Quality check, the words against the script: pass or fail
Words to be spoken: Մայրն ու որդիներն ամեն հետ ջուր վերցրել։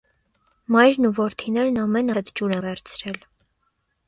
pass